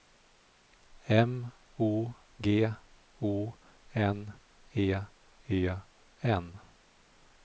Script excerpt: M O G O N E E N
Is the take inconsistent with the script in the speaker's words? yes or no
no